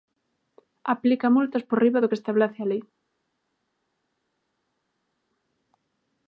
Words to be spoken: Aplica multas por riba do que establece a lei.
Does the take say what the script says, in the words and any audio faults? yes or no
yes